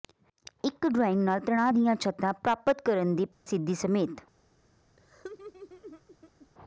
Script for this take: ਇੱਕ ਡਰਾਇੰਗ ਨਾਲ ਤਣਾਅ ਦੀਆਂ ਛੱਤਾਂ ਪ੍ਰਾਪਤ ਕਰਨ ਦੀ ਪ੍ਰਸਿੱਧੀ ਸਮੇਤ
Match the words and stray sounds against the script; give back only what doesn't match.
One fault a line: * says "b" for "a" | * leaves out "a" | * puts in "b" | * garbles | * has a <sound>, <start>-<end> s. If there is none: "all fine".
* has a dropout, 3.3-3.5 s
* has a laugh, 5.0-6.5 s